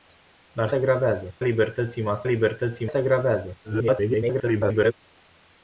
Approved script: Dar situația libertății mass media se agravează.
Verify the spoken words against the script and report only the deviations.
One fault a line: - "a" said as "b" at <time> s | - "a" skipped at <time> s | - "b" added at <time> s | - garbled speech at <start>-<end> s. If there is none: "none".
- "situația" said as "agravează" at 0.7 s
- "media" said as "libertății" at 2.2 s
- garbled speech at 3.6-4.9 s